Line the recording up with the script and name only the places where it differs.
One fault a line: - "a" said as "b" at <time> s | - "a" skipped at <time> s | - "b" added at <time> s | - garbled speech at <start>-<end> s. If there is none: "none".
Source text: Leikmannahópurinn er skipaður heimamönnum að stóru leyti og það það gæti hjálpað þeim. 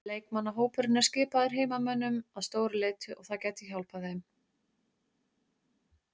- "það" skipped at 3.4 s